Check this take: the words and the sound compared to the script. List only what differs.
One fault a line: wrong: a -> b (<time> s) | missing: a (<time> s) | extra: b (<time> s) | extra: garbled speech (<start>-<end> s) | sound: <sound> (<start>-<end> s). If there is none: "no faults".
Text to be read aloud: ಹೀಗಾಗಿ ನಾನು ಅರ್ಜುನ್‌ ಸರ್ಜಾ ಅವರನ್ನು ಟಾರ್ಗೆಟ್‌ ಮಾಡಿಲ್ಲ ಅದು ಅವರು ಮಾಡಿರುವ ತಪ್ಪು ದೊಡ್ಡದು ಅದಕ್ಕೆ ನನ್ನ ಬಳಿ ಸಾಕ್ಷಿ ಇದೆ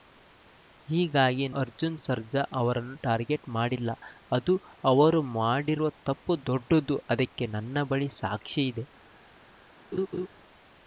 missing: ನಾನು (1.4 s)
sound: laugh (9.9-10.3 s)